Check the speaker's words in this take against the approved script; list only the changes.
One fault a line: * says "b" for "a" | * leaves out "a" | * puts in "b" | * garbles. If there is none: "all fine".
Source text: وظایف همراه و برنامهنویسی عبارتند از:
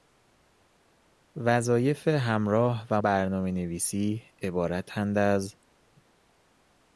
all fine